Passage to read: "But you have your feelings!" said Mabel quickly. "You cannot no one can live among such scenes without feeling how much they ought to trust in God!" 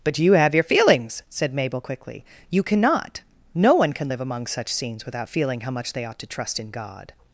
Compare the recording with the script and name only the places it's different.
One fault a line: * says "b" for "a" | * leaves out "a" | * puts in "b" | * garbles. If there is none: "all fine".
all fine